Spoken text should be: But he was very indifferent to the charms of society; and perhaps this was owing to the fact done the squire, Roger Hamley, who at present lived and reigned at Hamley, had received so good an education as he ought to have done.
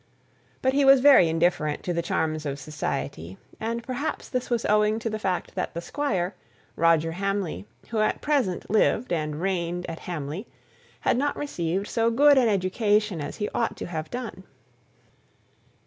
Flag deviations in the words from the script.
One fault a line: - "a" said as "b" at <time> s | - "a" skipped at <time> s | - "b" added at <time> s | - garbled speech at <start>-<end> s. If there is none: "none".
- "done" said as "that" at 5.6 s
- "not" added at 11.2 s